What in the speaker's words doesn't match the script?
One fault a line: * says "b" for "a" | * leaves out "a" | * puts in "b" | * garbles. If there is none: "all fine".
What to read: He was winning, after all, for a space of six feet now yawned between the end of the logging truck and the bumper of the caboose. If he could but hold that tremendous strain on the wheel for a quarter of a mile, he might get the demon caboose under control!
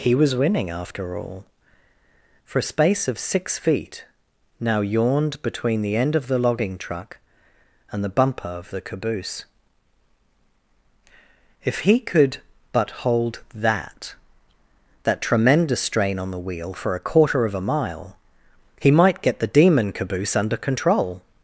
* puts in "that"